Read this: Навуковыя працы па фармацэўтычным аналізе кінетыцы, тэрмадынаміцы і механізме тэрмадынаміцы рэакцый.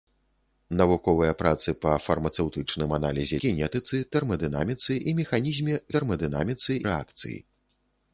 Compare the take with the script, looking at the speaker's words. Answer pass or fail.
pass